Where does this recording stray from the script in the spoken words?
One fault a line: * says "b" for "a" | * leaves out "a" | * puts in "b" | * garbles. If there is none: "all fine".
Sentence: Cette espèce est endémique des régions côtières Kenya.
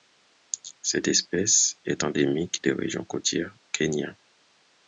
all fine